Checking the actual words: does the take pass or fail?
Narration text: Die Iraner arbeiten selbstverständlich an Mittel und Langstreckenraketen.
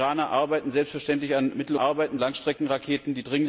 fail